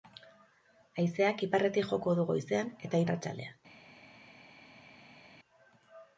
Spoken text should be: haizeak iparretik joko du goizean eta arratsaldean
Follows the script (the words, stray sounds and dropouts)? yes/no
yes